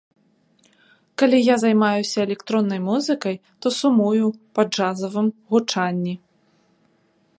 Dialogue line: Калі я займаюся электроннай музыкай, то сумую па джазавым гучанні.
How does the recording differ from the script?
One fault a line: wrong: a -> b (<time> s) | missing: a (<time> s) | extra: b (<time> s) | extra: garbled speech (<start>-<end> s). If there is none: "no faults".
no faults